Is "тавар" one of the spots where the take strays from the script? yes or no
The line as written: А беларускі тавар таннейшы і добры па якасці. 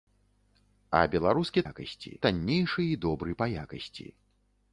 yes